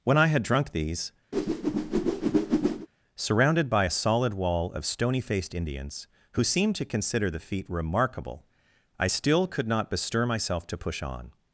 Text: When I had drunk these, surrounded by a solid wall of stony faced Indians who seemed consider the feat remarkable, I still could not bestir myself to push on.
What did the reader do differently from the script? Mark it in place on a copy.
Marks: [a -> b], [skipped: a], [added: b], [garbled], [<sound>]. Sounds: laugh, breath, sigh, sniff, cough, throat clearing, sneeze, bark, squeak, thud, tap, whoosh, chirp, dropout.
When I had drunk these, [whoosh] surrounded by a solid wall of stony faced Indians who seemed [added: to] consider the feat remarkable, I still could not bestir myself to push on.